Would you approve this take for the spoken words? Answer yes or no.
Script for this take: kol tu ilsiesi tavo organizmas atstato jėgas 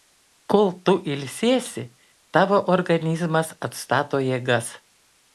yes